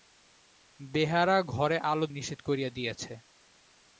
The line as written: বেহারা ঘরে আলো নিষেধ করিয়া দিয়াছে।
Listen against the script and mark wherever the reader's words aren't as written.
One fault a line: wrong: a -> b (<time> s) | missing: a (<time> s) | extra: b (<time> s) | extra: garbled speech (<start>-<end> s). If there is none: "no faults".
no faults